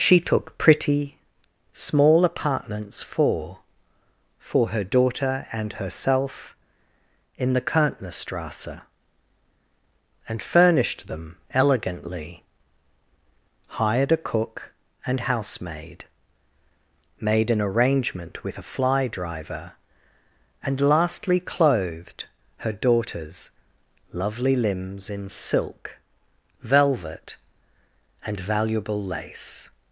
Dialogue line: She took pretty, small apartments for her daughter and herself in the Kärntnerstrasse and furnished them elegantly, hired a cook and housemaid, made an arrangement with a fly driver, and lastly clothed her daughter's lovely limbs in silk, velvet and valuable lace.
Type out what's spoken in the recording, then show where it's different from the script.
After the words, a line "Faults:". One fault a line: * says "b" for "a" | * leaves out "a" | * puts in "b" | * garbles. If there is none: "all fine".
She took pretty, small apartments for for her daughter and herself in the Kärntnerstrasse and furnished them elegantly, hired a cook and housemaid, made an arrangement with a fly driver, and lastly clothed her daughter's lovely limbs in silk, velvet and valuable lace.
Faults:
* puts in "for"